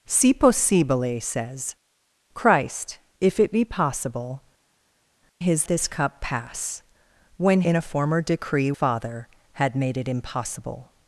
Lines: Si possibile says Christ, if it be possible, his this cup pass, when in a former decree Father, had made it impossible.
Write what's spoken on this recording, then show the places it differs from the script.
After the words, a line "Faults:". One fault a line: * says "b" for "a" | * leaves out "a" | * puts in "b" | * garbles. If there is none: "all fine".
Si possibile says Christ, if it be possible, his this cup pass, when in a former decree Father, had made it impossible.
Faults:
all fine